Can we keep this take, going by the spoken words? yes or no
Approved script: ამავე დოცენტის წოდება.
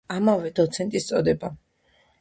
yes